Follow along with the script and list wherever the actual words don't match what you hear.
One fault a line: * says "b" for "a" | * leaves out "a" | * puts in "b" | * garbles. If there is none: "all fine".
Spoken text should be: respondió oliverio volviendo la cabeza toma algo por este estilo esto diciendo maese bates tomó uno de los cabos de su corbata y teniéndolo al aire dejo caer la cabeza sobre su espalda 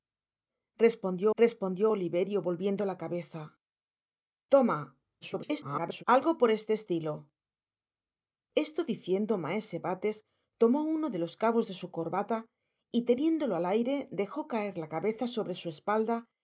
* puts in "respondió"
* garbles